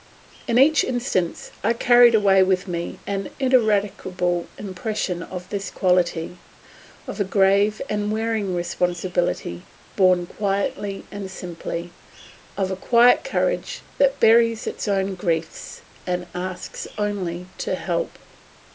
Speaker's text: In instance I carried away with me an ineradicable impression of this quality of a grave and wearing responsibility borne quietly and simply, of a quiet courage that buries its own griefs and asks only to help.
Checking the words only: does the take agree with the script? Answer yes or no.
no